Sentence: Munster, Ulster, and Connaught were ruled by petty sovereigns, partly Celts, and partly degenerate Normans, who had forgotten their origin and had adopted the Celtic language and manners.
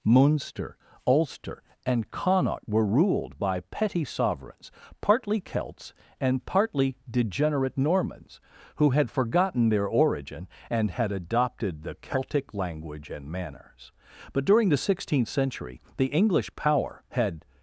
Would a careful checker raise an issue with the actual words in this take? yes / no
yes